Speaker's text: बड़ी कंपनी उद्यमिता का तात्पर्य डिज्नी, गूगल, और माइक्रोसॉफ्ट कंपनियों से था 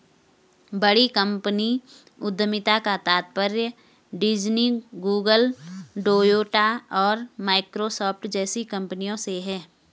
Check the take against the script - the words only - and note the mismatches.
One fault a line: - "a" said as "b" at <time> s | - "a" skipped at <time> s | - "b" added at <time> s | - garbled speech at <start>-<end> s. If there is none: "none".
- "टोयोटा" added at 6.0 s
- "जैसी" added at 8.3 s
- "था" said as "है" at 9.4 s